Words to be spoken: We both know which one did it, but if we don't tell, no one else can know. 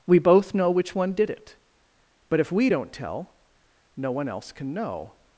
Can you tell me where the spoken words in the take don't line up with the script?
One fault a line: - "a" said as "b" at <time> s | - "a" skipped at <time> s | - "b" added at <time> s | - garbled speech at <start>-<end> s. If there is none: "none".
none